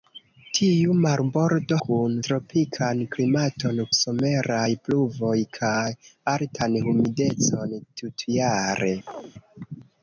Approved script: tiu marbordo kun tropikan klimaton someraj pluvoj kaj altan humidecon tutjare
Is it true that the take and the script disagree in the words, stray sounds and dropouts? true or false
true